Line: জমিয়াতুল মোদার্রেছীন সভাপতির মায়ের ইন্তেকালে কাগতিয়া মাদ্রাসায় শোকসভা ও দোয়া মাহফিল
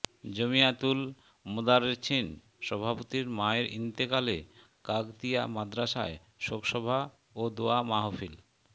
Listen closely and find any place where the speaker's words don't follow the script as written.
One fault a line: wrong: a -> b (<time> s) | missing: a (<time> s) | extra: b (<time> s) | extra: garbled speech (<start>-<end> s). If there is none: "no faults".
no faults